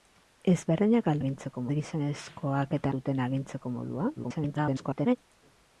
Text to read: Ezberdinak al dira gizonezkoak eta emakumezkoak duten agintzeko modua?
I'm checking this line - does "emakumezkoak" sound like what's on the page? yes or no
no